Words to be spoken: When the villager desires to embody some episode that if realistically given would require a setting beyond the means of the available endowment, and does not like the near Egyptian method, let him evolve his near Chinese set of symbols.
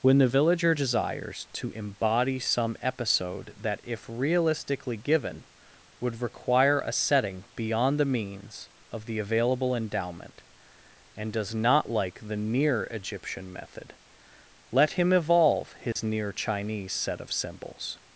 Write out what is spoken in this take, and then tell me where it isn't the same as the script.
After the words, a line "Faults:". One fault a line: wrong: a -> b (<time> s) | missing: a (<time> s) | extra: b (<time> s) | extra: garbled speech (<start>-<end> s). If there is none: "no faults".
When the villager desires to embody some episode that if realistically given would require a setting beyond the means of the available endowment, and does not like the near Egyptian method, let him evolve his near Chinese set of symbols.
Faults:
no faults